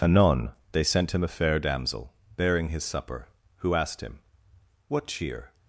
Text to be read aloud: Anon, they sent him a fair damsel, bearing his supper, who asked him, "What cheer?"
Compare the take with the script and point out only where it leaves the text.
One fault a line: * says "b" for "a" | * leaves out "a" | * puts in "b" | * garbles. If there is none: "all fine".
all fine